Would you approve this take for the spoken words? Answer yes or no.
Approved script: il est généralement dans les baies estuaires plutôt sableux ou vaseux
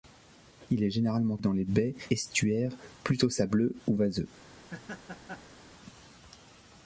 yes